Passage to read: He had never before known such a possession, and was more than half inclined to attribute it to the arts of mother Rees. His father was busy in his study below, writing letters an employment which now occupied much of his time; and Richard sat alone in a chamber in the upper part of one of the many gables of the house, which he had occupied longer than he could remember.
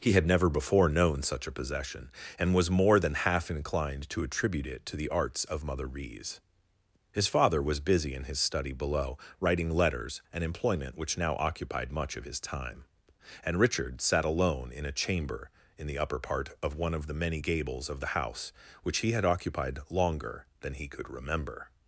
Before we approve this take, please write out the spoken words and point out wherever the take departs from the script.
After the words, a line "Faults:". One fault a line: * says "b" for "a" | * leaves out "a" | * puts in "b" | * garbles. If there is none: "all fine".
He had never before known such a possession, and was more than half inclined to attribute it to the arts of mother Rees. His father was busy in his study below, writing letters an employment which now occupied much of his time; and Richard sat alone in a chamber in the upper part of one of the many gables of the house, which he had occupied longer than he could remember.
Faults:
all fine